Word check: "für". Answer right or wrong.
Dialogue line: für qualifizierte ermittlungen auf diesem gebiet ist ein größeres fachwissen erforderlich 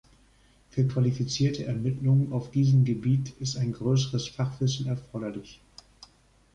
right